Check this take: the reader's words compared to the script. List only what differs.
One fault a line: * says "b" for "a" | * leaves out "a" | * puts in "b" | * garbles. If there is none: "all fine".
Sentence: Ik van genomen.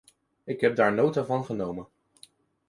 * puts in "heb daar nota"